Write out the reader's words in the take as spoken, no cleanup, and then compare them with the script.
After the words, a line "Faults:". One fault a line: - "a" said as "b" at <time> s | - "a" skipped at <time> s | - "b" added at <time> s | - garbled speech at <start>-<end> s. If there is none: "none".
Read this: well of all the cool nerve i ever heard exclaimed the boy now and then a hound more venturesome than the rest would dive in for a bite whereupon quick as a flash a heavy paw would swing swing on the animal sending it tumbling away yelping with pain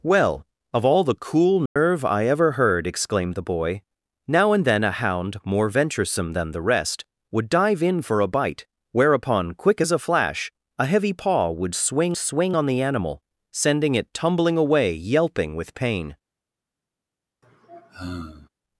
well of all the cool nerve i ever heard exclaimed the boy now and then a hound more venturesome than the rest would dive in for a bite whereupon quick as a flash a heavy paw would swing swing on the animal sending it tumbling away yelping with pain
Faults:
none